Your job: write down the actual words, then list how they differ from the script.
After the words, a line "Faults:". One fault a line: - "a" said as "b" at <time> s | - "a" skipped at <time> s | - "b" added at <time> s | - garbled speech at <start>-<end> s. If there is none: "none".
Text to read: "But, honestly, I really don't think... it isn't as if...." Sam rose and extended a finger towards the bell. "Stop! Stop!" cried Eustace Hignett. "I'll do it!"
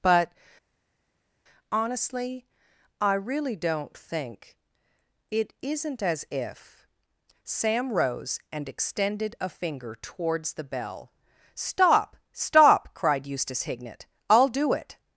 "But, honestly, I really don't think... it isn't as if...." Sam rose and extended a finger towards the bell. "Stop! Stop!" cried Eustace Hignett. "I'll do it!"
Faults:
none